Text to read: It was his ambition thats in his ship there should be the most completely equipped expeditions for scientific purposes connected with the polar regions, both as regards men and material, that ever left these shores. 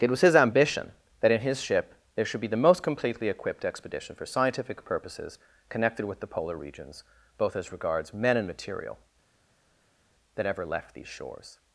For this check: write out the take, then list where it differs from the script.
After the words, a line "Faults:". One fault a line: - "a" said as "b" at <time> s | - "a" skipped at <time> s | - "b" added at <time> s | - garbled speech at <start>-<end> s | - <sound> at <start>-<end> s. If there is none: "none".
It was his ambition that in his ship there should be the most completely equipped expedition for scientific purposes connected with the polar regions, both as regards men and material, that ever left these shores.
Faults:
- "thats" said as "that" at 1.2 s
- "expeditions" said as "expedition" at 3.6 s